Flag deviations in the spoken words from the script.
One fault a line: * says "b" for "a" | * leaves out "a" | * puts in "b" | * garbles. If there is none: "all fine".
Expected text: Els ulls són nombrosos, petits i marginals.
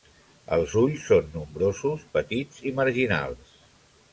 all fine